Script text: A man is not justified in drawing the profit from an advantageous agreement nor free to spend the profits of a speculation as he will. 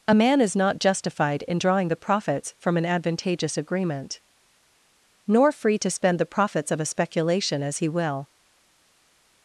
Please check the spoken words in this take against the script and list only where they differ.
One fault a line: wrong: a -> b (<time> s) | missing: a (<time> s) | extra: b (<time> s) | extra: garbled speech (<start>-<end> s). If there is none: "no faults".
wrong: profit -> profits (2.0 s)